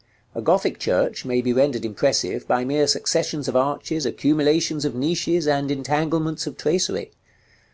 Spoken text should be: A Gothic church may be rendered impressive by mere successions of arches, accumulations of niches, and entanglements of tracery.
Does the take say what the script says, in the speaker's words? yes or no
yes